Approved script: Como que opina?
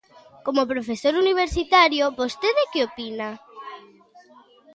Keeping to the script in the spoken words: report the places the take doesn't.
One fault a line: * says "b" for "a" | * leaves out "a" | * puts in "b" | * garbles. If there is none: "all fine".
* puts in "profesor universitario vostede"